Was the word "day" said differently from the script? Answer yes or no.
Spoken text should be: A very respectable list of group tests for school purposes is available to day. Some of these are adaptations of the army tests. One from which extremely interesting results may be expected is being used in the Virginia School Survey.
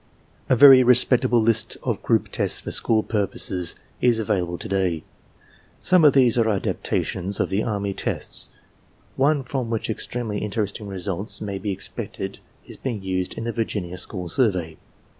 no